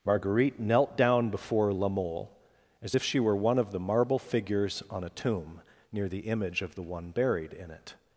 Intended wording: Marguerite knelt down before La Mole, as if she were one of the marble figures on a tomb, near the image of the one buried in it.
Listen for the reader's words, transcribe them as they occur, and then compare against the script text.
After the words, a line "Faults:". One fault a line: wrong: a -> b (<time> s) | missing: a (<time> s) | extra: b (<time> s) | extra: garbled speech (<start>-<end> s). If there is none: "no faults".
Marguerite knelt down before La Mole, as if she were one of the marble figures on a tomb, near the image of the one buried in it.
Faults:
no faults